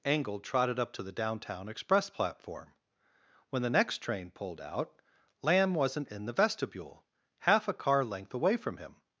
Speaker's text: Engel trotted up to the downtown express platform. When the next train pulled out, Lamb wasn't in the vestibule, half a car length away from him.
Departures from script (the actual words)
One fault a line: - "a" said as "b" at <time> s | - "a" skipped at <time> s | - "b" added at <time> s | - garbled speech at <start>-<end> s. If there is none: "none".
none